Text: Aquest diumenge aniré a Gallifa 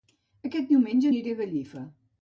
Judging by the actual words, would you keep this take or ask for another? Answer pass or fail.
pass